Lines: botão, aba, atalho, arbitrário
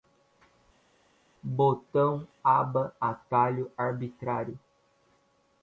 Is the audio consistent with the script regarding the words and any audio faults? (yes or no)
yes